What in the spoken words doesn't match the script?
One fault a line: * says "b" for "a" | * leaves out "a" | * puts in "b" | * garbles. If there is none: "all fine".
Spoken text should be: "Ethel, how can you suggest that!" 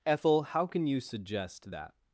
all fine